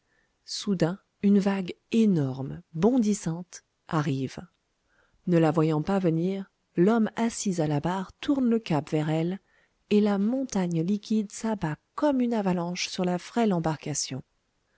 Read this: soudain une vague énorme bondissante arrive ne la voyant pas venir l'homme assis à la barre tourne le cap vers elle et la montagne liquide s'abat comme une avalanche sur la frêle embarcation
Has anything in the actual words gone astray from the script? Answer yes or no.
no